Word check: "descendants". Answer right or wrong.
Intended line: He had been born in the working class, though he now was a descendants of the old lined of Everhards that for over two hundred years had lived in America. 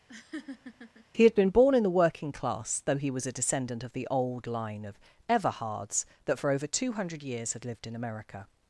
wrong